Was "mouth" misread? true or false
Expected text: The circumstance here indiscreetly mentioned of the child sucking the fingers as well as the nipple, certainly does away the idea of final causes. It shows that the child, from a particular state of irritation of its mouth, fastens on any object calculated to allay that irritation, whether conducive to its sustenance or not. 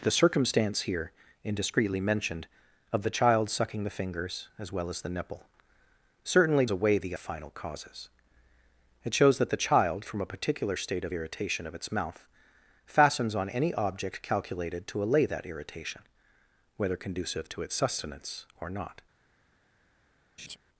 false